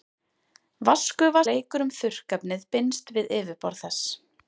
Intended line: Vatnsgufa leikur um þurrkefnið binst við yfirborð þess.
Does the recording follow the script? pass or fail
pass